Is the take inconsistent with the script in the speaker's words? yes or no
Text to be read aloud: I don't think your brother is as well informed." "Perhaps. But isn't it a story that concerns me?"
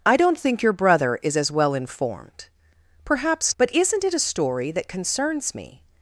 no